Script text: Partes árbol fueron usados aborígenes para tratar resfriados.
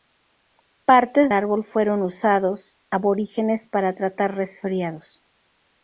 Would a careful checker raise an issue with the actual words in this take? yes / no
no